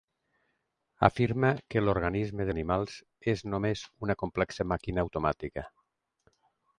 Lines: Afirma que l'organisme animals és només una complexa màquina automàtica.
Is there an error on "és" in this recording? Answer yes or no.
no